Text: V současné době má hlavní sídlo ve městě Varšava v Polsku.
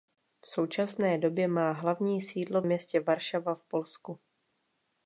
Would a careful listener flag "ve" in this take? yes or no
yes